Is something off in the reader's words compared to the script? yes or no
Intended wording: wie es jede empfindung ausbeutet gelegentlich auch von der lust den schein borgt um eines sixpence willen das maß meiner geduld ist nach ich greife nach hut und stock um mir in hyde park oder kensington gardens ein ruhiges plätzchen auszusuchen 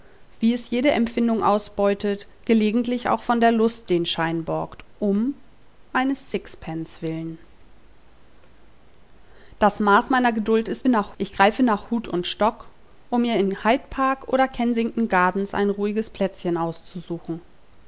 no